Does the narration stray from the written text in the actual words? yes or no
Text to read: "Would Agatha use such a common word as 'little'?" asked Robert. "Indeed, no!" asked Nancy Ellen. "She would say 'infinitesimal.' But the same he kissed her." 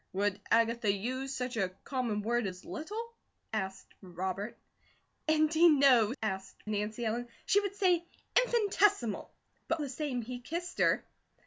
no